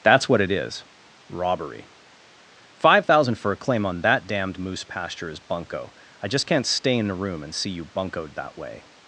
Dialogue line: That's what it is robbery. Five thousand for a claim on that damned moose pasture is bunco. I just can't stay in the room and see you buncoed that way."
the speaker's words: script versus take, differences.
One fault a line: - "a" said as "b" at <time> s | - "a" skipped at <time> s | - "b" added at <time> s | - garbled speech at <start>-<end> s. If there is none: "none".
none